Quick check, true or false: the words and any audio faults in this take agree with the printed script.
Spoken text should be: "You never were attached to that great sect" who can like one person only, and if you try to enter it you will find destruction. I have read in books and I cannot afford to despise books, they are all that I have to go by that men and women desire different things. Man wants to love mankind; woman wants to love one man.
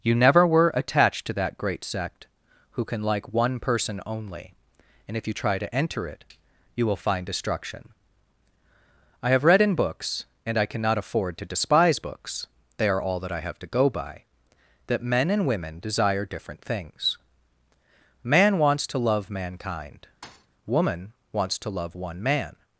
false